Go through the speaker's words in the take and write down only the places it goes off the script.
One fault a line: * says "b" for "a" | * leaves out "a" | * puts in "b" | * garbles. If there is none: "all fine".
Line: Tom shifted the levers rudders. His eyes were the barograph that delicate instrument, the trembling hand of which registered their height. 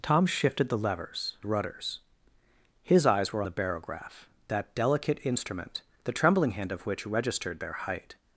all fine